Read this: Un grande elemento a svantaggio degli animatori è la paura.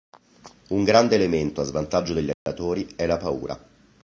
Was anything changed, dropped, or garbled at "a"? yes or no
no